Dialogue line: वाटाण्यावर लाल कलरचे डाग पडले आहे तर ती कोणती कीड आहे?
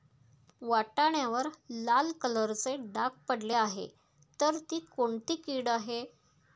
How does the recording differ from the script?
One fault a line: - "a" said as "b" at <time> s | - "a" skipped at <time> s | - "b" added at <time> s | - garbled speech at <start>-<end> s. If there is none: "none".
none